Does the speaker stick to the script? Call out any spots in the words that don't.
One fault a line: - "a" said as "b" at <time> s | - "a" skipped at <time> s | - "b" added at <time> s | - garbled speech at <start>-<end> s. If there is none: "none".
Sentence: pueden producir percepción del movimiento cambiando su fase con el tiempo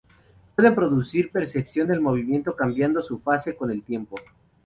none